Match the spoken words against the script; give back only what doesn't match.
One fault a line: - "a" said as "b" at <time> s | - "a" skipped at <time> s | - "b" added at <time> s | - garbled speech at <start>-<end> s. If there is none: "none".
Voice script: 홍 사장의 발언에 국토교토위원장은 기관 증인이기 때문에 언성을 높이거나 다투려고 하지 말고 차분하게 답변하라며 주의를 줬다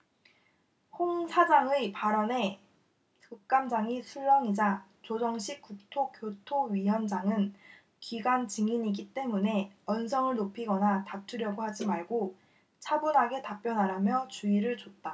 - "국감장이 술렁이자 조정식" added at 3.3 s